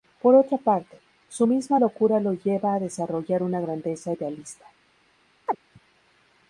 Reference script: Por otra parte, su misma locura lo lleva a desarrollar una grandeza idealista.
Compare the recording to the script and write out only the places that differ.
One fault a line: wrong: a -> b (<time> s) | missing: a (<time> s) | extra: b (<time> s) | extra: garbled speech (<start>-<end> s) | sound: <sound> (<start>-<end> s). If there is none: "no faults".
sound: chirp (5.5-5.6 s)